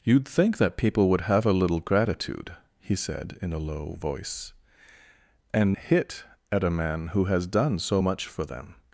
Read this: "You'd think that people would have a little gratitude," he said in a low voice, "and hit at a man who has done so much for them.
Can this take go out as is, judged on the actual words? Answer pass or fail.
pass